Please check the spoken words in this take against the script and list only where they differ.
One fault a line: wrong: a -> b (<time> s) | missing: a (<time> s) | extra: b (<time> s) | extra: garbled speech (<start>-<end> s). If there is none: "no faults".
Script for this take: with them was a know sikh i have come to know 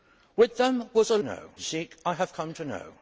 no faults